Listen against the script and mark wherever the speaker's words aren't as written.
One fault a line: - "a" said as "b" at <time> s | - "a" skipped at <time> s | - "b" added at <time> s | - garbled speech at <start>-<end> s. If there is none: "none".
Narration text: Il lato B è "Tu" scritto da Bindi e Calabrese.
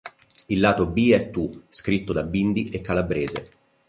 none